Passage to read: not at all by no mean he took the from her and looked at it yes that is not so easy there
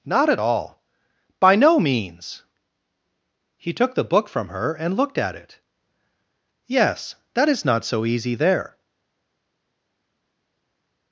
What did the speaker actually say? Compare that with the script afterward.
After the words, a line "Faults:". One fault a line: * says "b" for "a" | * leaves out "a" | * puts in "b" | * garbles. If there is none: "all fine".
not at all by no means he took the book from her and looked at it yes that is not so easy there
Faults:
* says "means" for "mean"
* puts in "book"